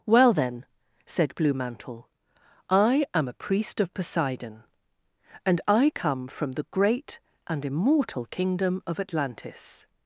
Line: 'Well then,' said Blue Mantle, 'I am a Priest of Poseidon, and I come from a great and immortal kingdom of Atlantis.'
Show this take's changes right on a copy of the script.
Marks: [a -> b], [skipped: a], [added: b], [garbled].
'Well then,' said Blue Mantle, 'I am a Priest of Poseidon, and I come from [a -> the] great and immortal kingdom of Atlantis.'